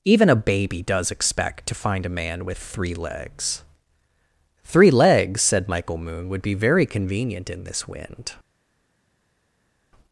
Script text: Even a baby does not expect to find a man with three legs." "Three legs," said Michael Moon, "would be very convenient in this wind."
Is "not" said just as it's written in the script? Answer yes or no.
no